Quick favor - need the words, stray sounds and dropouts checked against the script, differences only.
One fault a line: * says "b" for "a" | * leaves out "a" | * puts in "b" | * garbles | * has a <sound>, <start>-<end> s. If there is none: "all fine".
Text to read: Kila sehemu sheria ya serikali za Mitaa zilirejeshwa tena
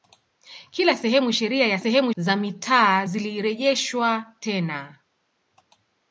* says "sehemu" for "serikali"